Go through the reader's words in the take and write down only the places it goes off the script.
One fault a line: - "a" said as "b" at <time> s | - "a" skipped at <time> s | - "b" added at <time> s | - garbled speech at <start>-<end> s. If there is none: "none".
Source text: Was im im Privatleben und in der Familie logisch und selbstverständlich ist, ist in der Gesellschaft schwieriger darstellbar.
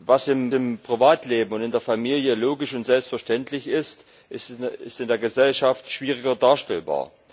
none